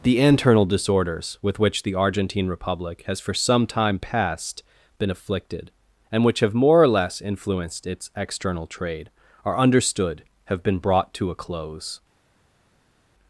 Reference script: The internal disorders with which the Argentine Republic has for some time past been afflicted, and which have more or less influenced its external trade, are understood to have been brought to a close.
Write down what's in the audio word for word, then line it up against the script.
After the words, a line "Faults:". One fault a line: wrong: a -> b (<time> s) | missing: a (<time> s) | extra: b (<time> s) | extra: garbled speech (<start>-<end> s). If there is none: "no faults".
The internal disorders with which the Argentine Republic has for some time past been afflicted, and which have more or less influenced its external trade, are understood have been brought to a close.
Faults:
missing: to (10.2 s)